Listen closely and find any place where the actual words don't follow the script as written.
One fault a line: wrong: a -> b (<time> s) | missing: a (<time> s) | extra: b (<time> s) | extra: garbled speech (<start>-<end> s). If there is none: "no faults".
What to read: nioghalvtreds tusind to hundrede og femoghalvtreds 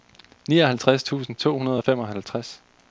no faults